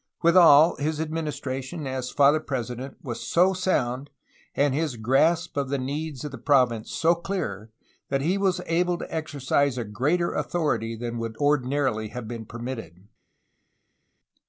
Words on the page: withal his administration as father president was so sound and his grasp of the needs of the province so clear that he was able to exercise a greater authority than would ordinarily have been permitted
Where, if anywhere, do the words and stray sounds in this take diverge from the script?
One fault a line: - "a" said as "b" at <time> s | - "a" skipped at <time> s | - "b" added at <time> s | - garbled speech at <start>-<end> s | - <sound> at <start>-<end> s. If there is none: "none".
none